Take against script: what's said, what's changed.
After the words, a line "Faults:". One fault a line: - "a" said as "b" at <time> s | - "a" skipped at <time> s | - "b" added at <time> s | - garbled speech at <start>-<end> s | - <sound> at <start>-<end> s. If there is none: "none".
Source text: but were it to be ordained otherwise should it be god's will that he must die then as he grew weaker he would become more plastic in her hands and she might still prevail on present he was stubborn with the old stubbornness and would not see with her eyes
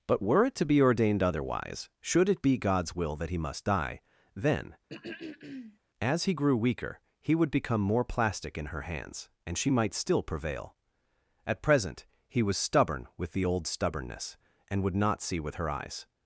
but were it to be ordained otherwise should it be god's will that he must die then as he grew weaker he would become more plastic in her hands and she might still prevail at present he was stubborn with the old stubbornness and would not see with her eyes
Faults:
- throat clearing at 4.9-5.8 s
- "on" said as "at" at 11.4 s